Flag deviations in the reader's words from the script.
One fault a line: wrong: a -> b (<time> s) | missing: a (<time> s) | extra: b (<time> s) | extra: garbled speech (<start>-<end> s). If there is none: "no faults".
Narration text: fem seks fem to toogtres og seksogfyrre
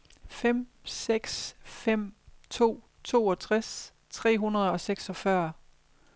extra: tre hundrede (4.1 s)